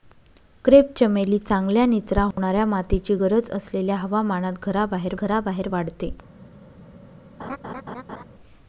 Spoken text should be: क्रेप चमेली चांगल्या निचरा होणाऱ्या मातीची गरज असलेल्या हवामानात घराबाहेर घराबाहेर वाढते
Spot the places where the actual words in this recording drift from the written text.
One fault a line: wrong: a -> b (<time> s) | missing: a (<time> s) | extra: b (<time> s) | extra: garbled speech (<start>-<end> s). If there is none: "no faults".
no faults